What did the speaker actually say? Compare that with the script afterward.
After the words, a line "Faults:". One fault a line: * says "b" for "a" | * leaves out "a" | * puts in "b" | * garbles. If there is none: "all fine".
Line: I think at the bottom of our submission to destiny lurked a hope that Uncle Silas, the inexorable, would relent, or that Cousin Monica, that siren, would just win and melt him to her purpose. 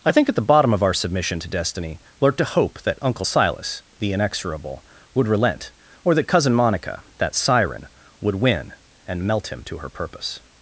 I think at the bottom of our submission to destiny lurked a hope that Uncle Silas, the inexorable, would relent, or that Cousin Monica, that siren, would win and melt him to her purpose.
Faults:
* leaves out "just"